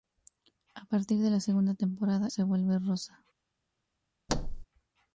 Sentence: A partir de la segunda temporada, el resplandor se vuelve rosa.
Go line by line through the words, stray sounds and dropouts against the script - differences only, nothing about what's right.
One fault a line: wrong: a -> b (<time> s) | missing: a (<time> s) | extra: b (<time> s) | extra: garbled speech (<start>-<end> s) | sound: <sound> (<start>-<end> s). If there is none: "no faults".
missing: el resplandor (2.3 s)
sound: thud (4.3-4.6 s)